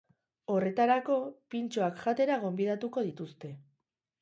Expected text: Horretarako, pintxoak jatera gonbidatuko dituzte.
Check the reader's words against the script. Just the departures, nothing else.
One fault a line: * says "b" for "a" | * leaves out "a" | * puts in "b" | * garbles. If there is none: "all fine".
all fine